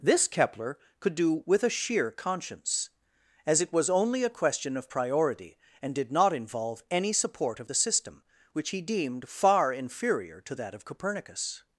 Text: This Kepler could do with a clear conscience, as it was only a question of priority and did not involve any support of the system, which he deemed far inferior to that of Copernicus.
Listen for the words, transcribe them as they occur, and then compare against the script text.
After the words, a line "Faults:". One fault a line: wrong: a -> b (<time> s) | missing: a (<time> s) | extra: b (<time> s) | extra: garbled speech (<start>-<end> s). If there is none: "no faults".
This Kepler could do with a sheer conscience, as it was only a question of priority and did not involve any support of the system, which he deemed far inferior to that of Copernicus.
Faults:
wrong: clear -> sheer (1.7 s)